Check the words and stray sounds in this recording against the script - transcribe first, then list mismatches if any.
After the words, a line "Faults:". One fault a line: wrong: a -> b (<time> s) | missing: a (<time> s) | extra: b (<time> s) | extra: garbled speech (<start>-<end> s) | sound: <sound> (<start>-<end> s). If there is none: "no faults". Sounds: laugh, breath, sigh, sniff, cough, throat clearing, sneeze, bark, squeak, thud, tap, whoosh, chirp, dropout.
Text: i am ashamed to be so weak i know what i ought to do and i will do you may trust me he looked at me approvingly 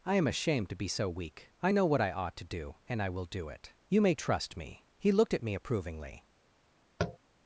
i am ashamed to be so weak i know what i ought to do and i will do it you may trust me he looked at me approvingly
Faults:
extra: it (3.5 s)
sound: tap (7.0-7.2 s)